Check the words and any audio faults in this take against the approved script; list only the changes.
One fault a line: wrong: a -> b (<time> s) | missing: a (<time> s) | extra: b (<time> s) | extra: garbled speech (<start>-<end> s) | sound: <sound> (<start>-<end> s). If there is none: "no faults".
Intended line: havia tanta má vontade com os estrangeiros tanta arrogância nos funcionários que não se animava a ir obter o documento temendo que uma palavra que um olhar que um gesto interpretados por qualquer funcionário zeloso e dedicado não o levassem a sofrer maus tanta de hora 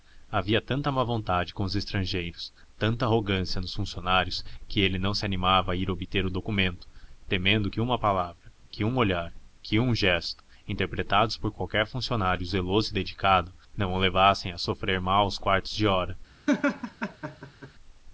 extra: ele (4.8 s)
wrong: tanta -> quartos (15.4 s)
sound: laugh (16.5-17.7 s)